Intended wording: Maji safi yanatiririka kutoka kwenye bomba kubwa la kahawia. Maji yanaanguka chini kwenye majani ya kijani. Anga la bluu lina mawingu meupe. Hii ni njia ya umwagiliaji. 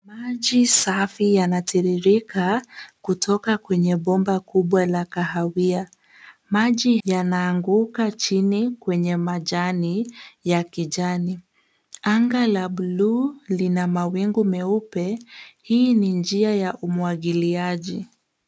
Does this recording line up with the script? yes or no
yes